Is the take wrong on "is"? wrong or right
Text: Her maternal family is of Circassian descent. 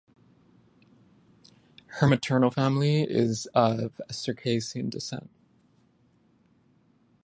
right